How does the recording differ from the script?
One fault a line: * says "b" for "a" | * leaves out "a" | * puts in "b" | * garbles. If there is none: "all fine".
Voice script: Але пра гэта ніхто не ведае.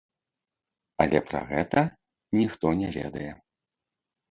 all fine